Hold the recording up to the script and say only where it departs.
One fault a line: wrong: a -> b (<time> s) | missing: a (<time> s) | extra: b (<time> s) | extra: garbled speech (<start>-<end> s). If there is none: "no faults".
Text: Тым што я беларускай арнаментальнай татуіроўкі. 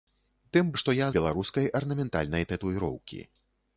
no faults